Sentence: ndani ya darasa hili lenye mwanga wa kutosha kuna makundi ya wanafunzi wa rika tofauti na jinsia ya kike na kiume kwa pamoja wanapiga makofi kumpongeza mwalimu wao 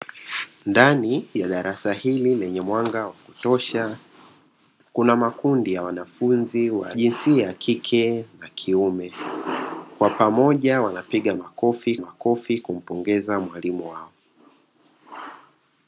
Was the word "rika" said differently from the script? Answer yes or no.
yes